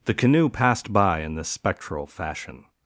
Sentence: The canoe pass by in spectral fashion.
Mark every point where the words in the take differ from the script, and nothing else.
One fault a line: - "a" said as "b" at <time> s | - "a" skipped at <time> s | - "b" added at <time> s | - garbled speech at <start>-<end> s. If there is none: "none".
- "pass" said as "passed" at 0.5 s
- "this" added at 1.4 s